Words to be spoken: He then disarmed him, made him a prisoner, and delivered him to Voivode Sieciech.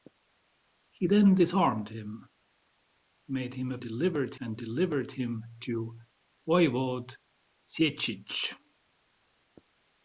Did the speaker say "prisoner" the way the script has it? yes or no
no